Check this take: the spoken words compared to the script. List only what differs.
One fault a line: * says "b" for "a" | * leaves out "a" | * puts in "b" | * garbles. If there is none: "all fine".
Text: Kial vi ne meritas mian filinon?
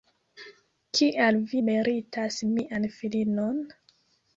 * leaves out "ne"